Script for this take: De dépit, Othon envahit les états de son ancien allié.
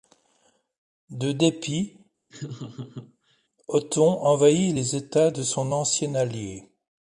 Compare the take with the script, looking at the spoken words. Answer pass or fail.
pass